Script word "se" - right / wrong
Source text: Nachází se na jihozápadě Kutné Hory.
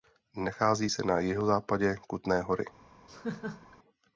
right